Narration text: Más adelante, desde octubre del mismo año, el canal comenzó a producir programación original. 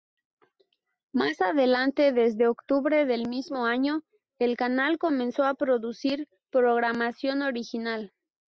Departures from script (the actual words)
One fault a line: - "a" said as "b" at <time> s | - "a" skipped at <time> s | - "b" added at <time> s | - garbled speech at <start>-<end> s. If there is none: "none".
none